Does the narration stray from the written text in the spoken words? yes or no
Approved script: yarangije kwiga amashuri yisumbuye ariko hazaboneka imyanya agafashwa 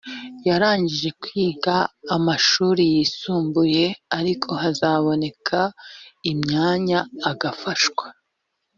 no